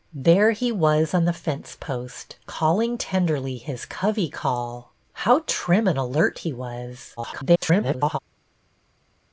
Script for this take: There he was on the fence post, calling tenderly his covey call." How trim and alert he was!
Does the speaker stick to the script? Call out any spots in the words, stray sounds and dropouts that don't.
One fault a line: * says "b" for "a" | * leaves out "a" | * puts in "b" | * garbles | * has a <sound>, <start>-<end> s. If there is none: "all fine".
* garbles